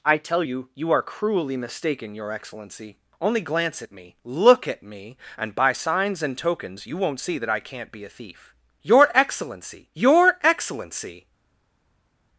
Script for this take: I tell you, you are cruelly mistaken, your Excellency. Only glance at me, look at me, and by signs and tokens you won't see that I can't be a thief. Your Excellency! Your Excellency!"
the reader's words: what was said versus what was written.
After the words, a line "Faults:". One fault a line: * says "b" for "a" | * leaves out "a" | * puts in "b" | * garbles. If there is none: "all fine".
I tell you, you are cruelly mistaken, your Excellency. Only glance at me, look at me, and by signs and tokens you won't see that I can't be a thief. Your Excellency! Your Excellency!"
Faults:
all fine